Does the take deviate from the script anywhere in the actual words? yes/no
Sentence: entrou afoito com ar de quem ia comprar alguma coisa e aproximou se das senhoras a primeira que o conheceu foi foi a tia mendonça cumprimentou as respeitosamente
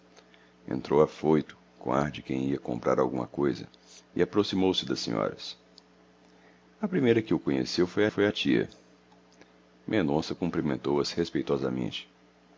no